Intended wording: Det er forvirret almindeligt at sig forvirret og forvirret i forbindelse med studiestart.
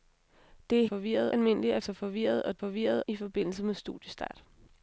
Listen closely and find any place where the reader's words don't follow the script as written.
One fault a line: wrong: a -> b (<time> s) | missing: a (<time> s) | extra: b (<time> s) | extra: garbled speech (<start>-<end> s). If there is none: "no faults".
no faults